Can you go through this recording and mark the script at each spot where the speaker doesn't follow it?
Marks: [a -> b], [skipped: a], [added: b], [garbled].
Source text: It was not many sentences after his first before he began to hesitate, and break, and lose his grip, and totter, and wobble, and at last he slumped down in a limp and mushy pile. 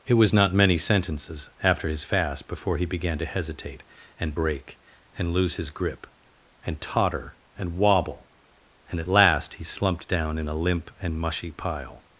It was not many sentences after his [first -> fast] before he began to hesitate, and break, and lose his grip, and totter, and wobble, and at last he slumped down in a limp and mushy pile.